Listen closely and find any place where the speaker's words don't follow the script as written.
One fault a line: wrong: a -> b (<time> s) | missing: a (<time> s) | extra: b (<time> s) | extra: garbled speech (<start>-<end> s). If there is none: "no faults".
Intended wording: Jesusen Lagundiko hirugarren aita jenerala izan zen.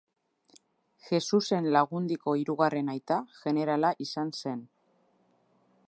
no faults